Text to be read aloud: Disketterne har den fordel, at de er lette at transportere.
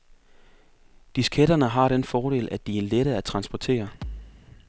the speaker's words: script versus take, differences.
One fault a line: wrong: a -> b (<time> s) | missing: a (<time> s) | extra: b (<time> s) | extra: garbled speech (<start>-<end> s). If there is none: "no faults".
no faults